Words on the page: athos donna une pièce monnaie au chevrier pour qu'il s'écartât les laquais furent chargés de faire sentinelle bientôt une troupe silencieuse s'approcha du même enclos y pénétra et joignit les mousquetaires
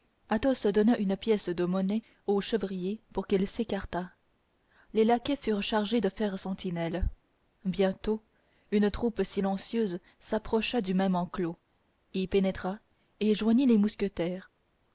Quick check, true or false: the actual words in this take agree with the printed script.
false